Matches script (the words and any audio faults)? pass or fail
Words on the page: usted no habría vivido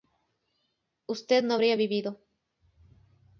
pass